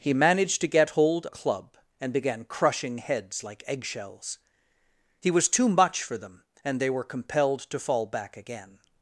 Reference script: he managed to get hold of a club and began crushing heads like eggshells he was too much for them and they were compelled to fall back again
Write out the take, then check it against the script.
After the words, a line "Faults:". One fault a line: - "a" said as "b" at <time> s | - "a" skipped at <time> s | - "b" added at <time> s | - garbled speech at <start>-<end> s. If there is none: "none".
he managed to get hold a club and began crushing heads like eggshells he was too much for them and they were compelled to fall back again
Faults:
- "of" skipped at 1.3 s